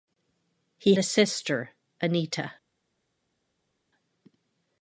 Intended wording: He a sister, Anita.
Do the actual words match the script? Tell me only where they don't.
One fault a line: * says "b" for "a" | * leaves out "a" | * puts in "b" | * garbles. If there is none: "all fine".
all fine